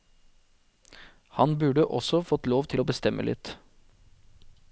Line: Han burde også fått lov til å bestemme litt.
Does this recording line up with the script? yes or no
yes